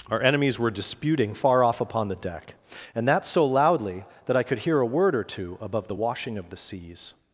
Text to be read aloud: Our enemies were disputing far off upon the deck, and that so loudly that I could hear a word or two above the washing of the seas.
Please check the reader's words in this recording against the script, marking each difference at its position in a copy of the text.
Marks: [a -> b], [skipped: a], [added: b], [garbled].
Our enemies were disputing far off upon the deck, and that so loudly that I could hear a word or two above the washing of the seas.